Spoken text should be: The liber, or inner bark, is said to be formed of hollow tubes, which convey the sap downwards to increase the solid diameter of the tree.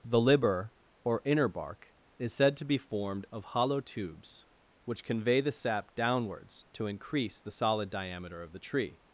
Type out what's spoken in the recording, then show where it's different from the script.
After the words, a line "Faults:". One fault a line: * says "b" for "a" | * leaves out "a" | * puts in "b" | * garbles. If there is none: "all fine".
The liber, or inner bark, is said to be formed of hollow tubes, which convey the sap downwards to increase the solid diameter of the tree.
Faults:
all fine